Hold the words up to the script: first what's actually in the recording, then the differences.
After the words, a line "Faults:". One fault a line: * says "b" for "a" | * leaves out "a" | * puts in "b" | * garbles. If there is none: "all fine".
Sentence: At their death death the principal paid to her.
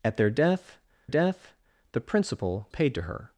At their death death the principal paid to her.
Faults:
all fine